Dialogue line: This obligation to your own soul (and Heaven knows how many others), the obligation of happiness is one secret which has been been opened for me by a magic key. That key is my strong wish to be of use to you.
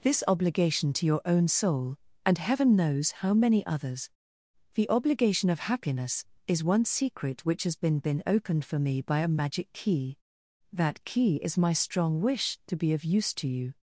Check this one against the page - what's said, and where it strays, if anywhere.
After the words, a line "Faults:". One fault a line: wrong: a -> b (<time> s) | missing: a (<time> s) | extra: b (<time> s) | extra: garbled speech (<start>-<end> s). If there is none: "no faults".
This obligation to your own soul (and Heaven knows how many others), the obligation of happiness is one secret which has been been opened for me by a magic key. That key is my strong wish to be of use to you.
Faults:
no faults